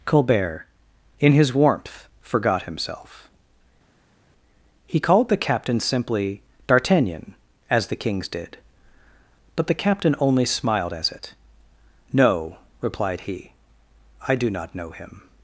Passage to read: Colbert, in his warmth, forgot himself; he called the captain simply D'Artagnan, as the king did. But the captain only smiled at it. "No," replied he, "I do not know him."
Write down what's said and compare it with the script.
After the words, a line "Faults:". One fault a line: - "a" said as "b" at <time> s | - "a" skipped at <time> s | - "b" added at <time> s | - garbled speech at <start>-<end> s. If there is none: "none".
Colbert, in his warmth, forgot himself; he called the captain simply D'Artagnan, as the kings did. But the captain only smiled as it. "No," replied he, "I do not know him."
Faults:
- "king" said as "kings" at 8.0 s
- "at" said as "as" at 10.9 s